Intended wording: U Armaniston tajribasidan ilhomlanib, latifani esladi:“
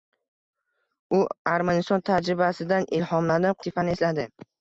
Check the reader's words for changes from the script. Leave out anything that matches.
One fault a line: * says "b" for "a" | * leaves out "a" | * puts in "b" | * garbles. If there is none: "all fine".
all fine